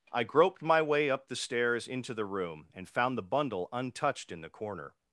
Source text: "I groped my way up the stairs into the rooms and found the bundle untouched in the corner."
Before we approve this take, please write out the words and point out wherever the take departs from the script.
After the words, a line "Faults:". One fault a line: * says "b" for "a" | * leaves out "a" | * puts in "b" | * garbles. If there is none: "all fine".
"I groped my way up the stairs into the room and found the bundle untouched in the corner."
Faults:
* says "room" for "rooms"